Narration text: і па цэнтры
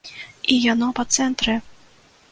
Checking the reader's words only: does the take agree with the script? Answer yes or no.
no